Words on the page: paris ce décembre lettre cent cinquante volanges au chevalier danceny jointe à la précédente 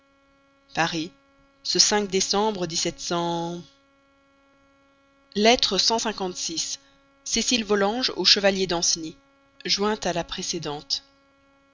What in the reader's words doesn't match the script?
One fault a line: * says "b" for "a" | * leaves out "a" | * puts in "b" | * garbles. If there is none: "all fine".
* puts in "six cécile"